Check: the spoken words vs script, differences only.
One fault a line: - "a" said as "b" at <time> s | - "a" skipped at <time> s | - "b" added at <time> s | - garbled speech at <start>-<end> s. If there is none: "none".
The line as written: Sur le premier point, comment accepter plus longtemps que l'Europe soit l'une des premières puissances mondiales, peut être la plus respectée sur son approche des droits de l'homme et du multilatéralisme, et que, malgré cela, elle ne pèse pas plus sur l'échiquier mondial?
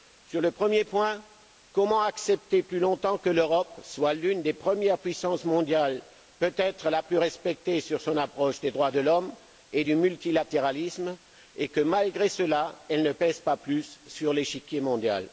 none